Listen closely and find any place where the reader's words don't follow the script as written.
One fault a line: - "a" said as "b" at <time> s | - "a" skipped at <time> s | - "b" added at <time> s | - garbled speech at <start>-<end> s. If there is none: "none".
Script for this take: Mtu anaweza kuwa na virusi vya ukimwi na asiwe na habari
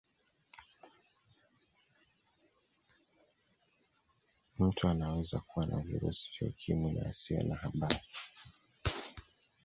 none